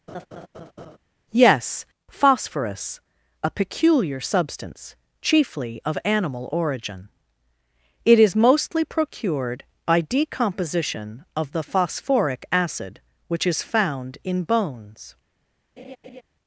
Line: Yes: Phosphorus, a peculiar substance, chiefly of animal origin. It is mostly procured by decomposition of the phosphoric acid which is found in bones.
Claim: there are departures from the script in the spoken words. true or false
false